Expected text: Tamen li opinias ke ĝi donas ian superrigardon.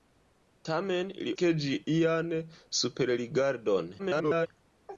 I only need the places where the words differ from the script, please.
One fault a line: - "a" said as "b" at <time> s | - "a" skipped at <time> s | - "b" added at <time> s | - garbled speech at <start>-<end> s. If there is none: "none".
- "opinias" skipped at 1.3 s
- "donas" skipped at 1.7 s
- garbled speech at 4.0-4.5 s